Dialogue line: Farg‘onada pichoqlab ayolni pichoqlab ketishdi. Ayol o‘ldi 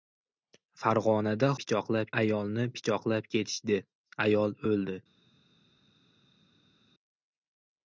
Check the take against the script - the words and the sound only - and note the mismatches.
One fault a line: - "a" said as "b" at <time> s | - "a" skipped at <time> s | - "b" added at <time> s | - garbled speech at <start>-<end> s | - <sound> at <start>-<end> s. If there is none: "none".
none